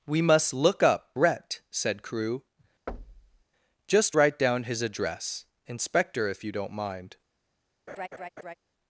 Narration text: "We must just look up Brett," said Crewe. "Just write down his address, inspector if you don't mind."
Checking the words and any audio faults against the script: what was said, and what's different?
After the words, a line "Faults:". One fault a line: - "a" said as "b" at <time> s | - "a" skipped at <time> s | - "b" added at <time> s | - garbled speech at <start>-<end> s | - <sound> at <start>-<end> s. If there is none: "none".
"We must look up Brett," said Crewe. "Just write down his address, inspector if you don't mind."
Faults:
- "just" skipped at 0.5 s
- thud at 2.9-3.4 s
- laugh at 7.9-8.5 s